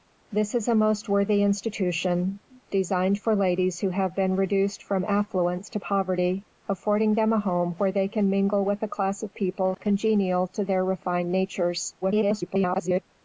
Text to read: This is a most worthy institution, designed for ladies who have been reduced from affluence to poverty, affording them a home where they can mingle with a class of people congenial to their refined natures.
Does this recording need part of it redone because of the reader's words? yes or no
yes